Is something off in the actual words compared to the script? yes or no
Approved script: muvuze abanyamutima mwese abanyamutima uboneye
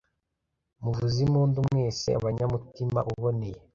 yes